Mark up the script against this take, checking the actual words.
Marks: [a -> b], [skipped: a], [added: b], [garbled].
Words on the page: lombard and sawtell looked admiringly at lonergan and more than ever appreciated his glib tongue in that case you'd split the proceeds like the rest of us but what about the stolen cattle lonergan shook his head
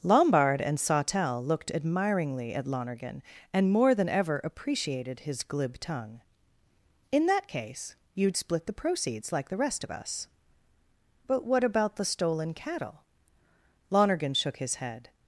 lombard and sawtell looked admiringly at lonergan and more than ever appreciated his glib tongue in that case you'd split the proceeds like the rest of us but what about the stolen cattle lonergan shook his head